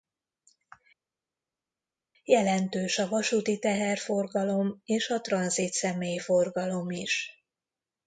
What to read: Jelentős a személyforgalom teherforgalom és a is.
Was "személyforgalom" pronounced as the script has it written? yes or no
no